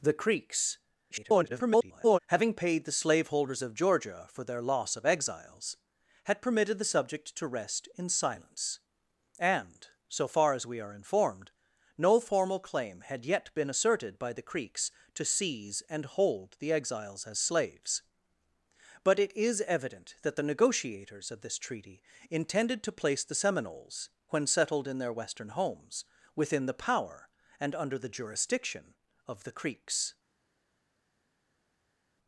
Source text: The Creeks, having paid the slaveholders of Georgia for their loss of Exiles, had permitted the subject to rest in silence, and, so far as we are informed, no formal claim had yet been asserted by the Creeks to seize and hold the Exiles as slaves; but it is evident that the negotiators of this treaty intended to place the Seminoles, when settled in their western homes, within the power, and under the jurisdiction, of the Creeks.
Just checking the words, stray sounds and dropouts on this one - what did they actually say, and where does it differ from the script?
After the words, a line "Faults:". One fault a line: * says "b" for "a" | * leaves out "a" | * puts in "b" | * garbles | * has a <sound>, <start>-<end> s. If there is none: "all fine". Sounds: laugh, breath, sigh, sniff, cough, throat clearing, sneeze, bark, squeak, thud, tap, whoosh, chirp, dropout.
The Creeks, [garbled] having paid the slaveholders of Georgia for their loss of Exiles, had permitted the subject to rest in silence, and, so far as we are informed, no formal claim had yet been asserted by the Creeks to seize and hold the Exiles as slaves; but it is evident that the negotiators of this treaty intended to place the Seminoles, when settled in their western homes, within the power, and under the jurisdiction, of the Creeks.
Faults:
* garbles